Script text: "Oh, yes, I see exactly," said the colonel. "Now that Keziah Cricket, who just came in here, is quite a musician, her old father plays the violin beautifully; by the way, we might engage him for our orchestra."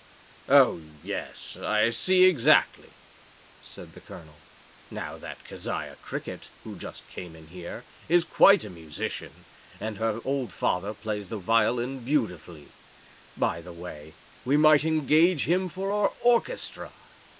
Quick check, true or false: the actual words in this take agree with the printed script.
false